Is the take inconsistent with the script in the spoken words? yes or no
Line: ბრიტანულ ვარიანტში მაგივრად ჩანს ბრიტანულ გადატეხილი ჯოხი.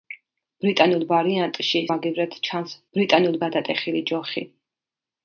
no